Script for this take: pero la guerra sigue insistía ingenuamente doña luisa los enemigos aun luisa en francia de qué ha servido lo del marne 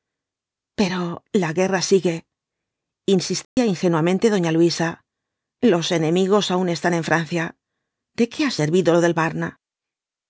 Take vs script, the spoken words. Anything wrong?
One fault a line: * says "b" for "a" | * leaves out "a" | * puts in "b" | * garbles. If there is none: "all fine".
* says "están" for "luisa"